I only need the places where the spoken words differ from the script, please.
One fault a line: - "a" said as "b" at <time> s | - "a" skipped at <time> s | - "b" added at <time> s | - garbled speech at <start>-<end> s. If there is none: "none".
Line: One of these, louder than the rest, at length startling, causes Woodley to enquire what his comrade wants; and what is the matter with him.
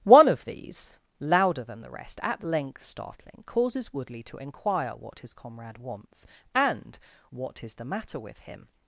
none